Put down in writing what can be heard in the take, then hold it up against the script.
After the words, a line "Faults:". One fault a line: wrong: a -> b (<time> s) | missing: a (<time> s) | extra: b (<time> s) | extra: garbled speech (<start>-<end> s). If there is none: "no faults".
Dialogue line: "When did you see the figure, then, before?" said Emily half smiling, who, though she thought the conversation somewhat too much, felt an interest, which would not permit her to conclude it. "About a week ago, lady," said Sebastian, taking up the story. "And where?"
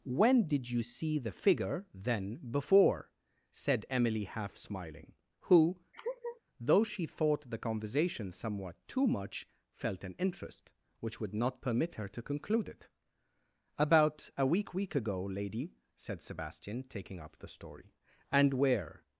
"When did you see the figure, then, before?" said Emily half smiling, who, though she thought the conversation somewhat too much, felt an interest, which would not permit her to conclude it. "About a week week ago, lady," said Sebastian, taking up the story. "And where?"
Faults:
extra: week (14.7 s)